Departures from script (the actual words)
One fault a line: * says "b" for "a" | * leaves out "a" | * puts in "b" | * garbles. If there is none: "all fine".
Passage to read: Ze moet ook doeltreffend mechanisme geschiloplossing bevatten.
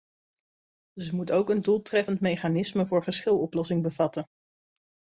* puts in "een"
* puts in "voor"